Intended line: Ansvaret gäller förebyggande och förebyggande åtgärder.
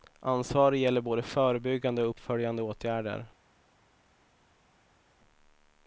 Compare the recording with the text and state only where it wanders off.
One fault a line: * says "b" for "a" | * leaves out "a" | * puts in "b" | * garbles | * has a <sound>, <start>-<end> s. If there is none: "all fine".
* puts in "både"
* says "uppföljande" for "förebyggande"